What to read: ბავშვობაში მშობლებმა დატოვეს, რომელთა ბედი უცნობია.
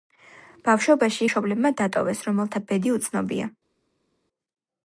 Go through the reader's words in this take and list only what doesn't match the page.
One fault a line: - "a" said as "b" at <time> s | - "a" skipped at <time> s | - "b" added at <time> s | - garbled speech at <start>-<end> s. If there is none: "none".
none